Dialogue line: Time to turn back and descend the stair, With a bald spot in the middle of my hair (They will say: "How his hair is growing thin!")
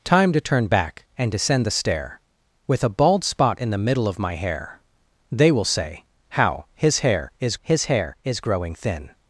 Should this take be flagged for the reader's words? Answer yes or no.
yes